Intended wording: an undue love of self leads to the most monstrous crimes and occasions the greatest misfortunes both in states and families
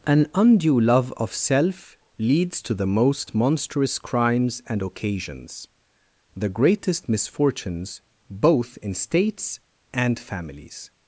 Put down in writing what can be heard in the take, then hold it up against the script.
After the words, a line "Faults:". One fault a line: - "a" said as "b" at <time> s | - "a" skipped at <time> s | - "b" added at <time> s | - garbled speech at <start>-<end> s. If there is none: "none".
an undue love of self leads to the most monstrous crimes and occasions the greatest misfortunes both in states and families
Faults:
none